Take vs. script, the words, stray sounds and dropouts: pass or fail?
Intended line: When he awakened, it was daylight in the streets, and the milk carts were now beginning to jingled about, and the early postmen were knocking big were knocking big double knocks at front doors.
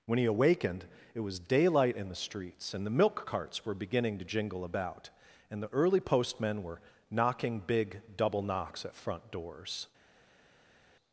fail